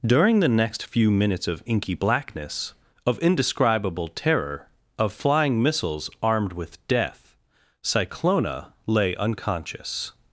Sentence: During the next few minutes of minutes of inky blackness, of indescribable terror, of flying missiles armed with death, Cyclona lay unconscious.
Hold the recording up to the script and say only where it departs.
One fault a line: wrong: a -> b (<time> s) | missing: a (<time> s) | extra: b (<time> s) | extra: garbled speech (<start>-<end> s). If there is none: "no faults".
missing: minutes of (1.6 s)